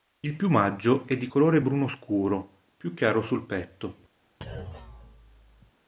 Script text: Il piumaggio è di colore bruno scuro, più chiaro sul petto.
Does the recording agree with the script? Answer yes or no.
yes